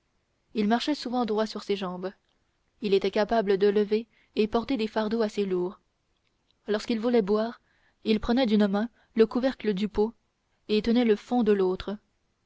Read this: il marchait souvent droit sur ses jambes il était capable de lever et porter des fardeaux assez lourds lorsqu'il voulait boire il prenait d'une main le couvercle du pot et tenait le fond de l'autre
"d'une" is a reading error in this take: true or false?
false